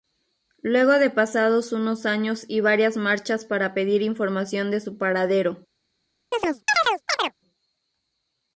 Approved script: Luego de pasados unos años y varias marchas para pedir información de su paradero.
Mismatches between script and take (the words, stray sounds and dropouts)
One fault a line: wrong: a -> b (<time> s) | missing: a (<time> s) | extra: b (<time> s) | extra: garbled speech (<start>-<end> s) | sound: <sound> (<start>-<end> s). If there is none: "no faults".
sound: chirp (6.3-7.3 s)